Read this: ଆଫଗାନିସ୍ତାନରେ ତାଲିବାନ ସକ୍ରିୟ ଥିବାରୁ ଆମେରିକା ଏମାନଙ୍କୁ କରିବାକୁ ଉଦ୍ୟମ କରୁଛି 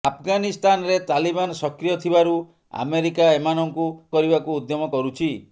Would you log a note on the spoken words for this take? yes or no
no